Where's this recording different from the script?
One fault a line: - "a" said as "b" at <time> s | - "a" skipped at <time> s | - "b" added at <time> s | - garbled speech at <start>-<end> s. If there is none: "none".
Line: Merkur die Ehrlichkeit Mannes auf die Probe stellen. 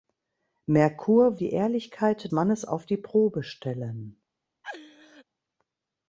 none